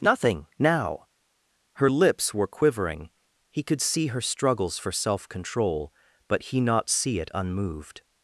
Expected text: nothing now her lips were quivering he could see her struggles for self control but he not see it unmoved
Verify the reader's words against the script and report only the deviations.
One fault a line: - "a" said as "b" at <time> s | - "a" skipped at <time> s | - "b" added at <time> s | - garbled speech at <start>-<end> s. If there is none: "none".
none